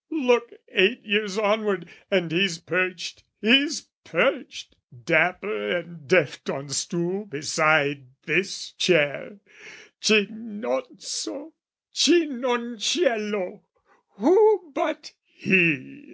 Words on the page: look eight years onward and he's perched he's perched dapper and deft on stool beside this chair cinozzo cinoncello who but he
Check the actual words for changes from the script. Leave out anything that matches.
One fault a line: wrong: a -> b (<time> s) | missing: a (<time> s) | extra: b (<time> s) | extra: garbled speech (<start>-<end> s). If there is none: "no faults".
no faults